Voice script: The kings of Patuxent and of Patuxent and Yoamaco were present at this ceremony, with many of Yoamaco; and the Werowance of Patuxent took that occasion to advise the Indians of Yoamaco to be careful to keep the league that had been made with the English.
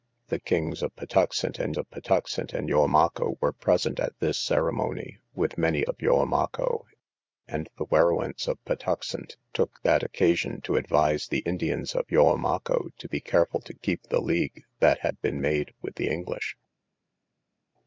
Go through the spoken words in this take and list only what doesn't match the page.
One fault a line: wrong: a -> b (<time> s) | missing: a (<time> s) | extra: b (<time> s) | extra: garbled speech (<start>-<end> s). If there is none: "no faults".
no faults